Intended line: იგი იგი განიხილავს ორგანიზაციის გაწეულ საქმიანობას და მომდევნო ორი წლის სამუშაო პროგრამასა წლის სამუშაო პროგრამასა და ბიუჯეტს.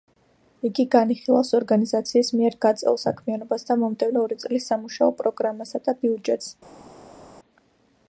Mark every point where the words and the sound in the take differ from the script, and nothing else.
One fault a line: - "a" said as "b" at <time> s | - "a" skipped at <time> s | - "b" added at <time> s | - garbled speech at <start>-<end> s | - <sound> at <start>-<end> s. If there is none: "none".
- "იგი" skipped at 0.8 s
- "მიერ" added at 2.4 s
- "წლის სამუშაო პროგრამასა" skipped at 5.8 s